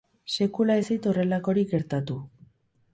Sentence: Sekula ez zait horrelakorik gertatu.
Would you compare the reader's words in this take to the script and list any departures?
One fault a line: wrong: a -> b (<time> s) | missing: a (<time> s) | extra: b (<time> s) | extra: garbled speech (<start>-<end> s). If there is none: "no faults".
no faults